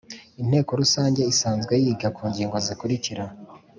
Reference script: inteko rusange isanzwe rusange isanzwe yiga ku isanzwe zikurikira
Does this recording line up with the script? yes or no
no